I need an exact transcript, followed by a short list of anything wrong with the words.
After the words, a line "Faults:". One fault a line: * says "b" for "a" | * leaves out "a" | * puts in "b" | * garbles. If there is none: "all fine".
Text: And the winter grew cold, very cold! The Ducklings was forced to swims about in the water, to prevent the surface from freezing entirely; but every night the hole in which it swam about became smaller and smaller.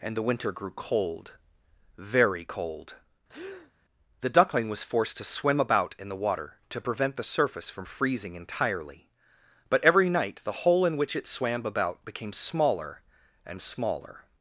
And the winter grew cold, very cold! The Duckling was forced to swim about in the water, to prevent the surface from freezing entirely; but every night the hole in which it swam about became smaller and smaller.
Faults:
* says "Duckling" for "Ducklings"
* says "swim" for "swims"